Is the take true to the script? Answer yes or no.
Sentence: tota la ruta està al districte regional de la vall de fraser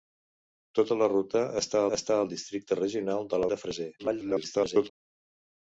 no